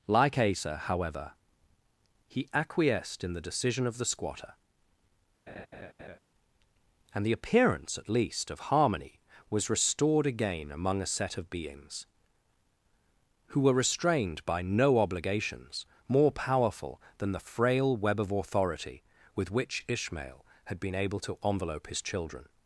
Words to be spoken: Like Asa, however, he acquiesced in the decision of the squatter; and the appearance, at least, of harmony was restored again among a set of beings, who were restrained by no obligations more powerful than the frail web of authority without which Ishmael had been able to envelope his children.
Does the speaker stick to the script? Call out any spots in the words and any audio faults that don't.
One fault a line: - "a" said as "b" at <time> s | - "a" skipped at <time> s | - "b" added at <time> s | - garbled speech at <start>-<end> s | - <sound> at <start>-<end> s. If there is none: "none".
- laugh at 5.5-6.2 s
- "without" said as "with" at 19.3 s